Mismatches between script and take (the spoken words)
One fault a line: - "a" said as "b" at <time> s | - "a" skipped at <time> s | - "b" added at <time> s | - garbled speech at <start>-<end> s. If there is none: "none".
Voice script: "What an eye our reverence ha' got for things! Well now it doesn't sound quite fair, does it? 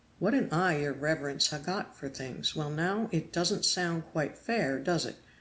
- "our" said as "your" at 0.8 s